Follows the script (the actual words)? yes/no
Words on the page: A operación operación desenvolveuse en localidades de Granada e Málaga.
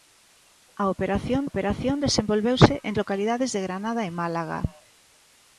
yes